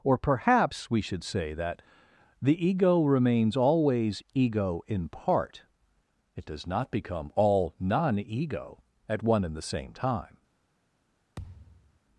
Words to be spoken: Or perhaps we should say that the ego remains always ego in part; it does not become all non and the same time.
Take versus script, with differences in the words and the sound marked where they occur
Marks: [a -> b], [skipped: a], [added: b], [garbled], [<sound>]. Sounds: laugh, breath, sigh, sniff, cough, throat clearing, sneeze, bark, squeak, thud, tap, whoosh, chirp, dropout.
Or perhaps we should say that the ego remains always ego in part; it does not become all non [added: ego at one] and the same time. [thud]